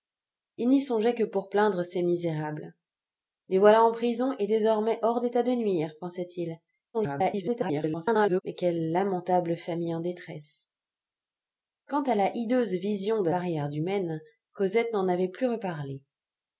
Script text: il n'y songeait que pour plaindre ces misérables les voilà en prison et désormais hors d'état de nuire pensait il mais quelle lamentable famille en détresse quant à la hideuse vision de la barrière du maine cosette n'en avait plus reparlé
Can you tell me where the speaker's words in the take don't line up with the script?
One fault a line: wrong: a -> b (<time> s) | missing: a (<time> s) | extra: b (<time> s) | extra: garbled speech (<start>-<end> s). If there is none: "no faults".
extra: garbled speech (6.9-8.4 s)
missing: la (13.3 s)